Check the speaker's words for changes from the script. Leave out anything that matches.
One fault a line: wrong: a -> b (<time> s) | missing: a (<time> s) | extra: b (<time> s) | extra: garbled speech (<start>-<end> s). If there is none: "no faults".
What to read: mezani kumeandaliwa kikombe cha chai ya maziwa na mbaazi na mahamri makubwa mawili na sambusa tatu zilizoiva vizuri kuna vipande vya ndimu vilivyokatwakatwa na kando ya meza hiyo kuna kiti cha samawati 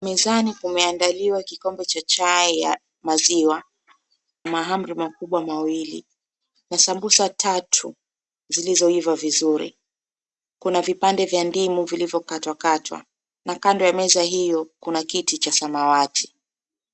missing: na mbaazi na (3.6 s)